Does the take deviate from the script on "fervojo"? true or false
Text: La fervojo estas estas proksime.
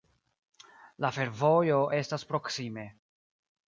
false